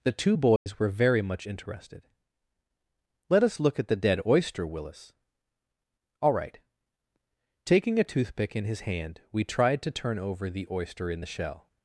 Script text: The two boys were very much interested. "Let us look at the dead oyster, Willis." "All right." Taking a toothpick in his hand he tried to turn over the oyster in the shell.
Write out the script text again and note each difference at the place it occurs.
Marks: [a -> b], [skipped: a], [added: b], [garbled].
The two boys were very much interested. "Let us look at the dead oyster, Willis." "All right." Taking a toothpick in his hand [he -> we] tried to turn over the oyster in the shell.